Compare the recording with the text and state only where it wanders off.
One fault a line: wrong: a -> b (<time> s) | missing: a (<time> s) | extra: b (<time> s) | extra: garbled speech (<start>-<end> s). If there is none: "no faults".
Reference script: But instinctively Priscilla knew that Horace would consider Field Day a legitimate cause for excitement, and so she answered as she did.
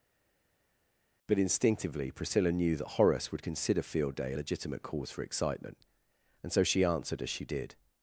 no faults